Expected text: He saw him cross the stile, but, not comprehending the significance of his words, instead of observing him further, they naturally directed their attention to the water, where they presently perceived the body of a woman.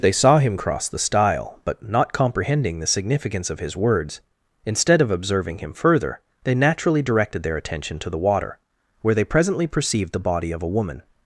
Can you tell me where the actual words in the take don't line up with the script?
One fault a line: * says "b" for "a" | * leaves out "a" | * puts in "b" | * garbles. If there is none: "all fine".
* says "They" for "He"